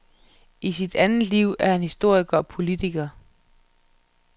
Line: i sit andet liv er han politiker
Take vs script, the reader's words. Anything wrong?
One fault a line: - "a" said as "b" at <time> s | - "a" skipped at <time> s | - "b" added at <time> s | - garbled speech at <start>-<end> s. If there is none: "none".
- "historiker og" added at 1.8 s